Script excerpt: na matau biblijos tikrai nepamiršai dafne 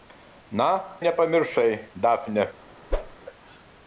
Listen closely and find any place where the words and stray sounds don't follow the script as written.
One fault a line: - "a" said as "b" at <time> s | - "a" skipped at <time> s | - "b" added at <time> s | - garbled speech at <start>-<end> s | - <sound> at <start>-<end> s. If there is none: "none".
- "matau biblijos tikrai" skipped at 0.7 s
- whoosh at 2.9-3.2 s